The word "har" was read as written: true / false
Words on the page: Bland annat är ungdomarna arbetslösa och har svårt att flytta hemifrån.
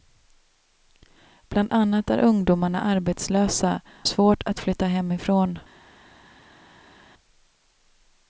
false